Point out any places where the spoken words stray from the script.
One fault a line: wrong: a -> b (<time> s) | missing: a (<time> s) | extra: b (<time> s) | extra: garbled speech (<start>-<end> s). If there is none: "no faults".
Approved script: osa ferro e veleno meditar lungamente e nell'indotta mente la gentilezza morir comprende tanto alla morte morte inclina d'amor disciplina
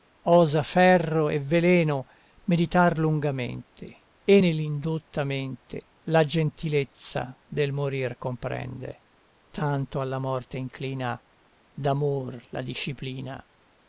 extra: del (7.4 s)
missing: morte (10.6 s)
extra: la (12.5 s)